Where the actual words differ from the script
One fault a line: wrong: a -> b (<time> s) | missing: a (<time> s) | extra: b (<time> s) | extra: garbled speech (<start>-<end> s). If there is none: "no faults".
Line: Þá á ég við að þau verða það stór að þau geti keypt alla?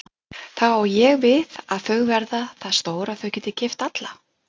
no faults